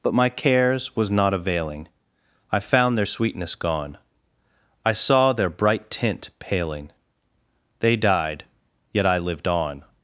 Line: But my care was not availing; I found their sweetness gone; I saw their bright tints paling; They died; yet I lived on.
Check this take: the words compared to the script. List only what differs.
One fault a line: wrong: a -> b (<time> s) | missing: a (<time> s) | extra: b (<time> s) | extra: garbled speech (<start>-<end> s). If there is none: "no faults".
wrong: care -> cares (0.3 s)
wrong: tints -> tint (5.9 s)